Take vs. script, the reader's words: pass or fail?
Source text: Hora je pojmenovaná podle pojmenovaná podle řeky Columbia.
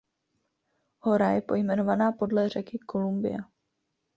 fail